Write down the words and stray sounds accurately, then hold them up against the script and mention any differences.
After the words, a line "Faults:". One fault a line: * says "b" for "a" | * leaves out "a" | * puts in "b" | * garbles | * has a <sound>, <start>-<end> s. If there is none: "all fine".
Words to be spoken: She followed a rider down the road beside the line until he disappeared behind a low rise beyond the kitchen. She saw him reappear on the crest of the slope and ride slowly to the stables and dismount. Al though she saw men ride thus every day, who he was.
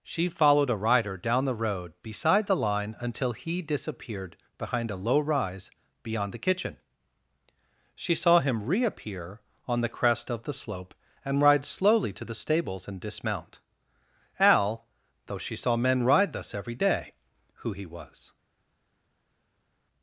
She followed a rider down the road beside the line until he disappeared behind a low rise beyond the kitchen. She saw him reappear on the crest of the slope and ride slowly to the stables and dismount. Al though she saw men ride thus every day, who he was.
Faults:
all fine